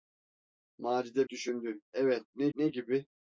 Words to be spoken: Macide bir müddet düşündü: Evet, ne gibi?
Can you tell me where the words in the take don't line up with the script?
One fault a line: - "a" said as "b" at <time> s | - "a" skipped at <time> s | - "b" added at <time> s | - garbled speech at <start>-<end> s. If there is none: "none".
- "bir müddet" skipped at 1.3 s
- "ne" added at 2.5 s